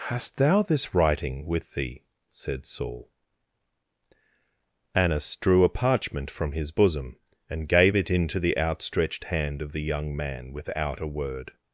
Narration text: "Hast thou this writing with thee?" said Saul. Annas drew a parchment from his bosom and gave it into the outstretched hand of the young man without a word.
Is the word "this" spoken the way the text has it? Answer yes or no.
yes